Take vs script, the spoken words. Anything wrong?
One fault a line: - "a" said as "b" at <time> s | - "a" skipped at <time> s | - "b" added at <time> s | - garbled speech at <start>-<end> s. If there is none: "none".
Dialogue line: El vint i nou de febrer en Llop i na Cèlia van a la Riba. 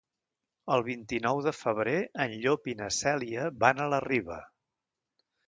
none